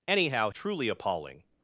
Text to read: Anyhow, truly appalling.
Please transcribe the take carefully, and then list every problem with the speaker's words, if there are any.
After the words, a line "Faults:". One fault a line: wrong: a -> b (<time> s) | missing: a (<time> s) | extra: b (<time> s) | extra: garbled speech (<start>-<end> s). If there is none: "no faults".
Anyhow, truly appalling.
Faults:
no faults